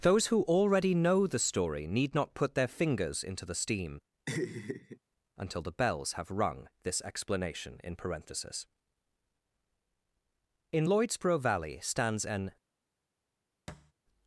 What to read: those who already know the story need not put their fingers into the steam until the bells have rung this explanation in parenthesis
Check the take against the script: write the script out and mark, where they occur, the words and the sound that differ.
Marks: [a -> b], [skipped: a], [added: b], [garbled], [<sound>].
those who already know the story need not put their fingers into the steam [laugh] until the bells have rung this explanation in parenthesis [added: in lloydsboro valley stands an] [thud]